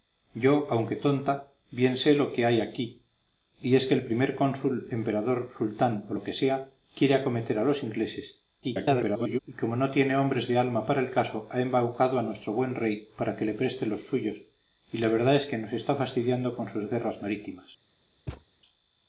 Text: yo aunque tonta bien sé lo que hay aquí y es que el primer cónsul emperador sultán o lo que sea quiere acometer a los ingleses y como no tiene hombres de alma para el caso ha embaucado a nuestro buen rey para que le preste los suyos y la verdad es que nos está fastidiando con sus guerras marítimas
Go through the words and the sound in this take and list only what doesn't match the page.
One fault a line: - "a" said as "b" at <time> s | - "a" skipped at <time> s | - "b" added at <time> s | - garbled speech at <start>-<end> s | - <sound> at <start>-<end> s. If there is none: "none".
- garbled speech at 8.6-9.4 s
- thud at 18.3-18.4 s